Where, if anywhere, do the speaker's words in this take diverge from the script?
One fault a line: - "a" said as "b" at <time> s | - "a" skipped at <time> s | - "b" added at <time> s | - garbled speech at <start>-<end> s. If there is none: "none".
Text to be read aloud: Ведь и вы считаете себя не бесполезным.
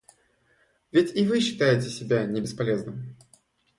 none